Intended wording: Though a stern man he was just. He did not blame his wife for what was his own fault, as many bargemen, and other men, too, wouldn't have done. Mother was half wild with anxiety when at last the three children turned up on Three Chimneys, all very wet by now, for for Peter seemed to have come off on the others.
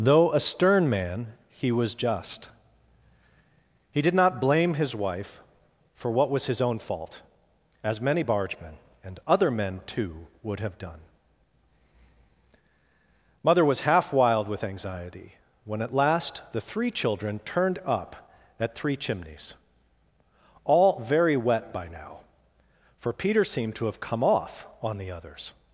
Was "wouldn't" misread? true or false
true